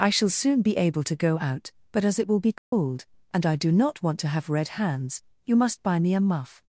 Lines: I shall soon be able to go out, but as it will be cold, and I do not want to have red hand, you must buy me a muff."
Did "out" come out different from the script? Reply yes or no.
no